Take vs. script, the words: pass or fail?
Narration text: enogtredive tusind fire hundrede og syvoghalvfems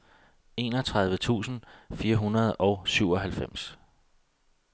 pass